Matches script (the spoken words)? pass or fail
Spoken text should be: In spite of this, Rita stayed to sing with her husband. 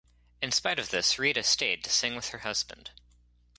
pass